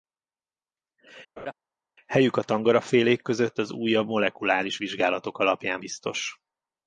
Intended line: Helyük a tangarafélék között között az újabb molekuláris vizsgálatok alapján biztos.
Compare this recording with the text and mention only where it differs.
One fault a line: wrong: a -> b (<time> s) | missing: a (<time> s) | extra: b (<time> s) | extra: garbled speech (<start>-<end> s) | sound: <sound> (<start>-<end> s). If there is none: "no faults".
sound: laugh (1.4-1.5 s)
missing: között (3.6 s)